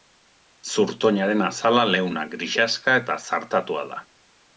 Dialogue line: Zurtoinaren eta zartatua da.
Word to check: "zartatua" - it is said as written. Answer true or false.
true